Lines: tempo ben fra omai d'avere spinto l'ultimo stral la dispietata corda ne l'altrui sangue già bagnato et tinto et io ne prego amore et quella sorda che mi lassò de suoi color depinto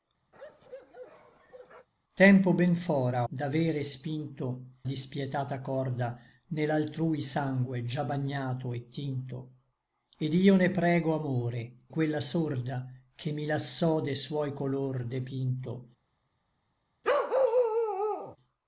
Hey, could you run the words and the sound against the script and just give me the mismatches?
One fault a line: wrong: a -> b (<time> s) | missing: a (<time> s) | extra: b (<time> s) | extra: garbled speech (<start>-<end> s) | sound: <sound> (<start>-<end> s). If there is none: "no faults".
sound: bark (0.3-1.9 s)
missing: omai (3.3 s)
missing: l'ultimo stral la (4.7 s)
missing: et (11.8 s)
sound: bark (17.0-18.4 s)